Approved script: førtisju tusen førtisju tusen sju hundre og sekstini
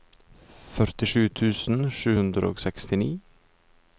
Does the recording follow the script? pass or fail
fail